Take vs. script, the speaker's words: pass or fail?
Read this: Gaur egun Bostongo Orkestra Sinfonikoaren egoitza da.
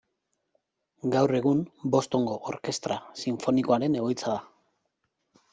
pass